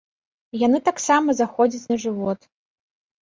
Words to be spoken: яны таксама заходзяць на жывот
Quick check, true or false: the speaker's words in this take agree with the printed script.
true